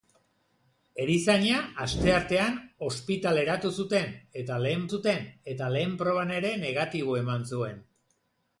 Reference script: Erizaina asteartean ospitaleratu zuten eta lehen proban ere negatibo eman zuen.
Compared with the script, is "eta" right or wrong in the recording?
right